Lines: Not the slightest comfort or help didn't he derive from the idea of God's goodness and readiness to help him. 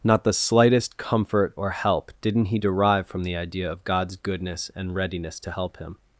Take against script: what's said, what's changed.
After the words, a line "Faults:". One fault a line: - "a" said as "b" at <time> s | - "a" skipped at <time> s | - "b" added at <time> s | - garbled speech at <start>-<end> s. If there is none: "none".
Not the slightest comfort or help didn't he derive from the idea of God's goodness and readiness to help him.
Faults:
none